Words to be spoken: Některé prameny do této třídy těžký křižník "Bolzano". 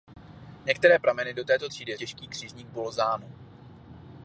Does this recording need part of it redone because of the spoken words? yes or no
no